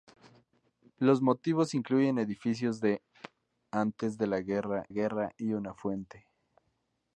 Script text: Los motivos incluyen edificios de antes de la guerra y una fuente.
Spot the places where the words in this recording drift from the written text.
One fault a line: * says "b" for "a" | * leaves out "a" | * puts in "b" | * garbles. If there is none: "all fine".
* puts in "guerra"